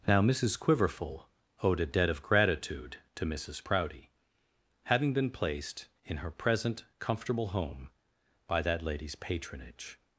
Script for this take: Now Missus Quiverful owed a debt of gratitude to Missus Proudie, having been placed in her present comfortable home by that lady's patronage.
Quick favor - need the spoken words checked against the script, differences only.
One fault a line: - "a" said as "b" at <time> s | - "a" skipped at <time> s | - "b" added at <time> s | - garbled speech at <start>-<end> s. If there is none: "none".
none